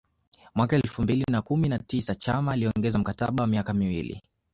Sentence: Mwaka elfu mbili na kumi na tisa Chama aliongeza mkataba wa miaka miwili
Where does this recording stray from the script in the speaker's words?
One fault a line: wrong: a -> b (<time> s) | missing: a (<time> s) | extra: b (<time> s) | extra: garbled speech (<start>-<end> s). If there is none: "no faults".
no faults